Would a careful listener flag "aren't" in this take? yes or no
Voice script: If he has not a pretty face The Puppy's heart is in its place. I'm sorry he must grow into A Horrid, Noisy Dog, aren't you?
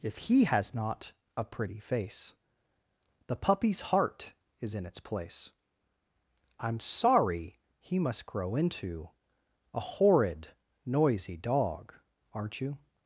no